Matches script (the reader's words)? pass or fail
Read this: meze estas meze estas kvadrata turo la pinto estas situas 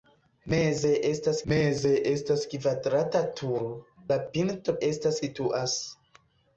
pass